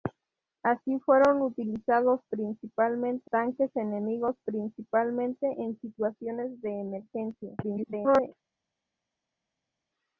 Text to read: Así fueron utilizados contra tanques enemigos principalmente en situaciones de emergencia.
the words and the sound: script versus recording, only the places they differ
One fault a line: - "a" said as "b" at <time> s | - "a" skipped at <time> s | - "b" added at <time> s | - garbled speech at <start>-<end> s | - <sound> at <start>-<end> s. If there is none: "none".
- "contra" said as "principalmente" at 2.3 s
- garbled speech at 7.6-8.3 s